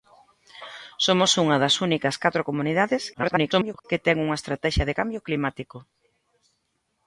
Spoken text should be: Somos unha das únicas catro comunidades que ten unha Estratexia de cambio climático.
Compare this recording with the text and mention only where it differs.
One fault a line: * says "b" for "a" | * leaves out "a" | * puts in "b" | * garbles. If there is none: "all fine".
* garbles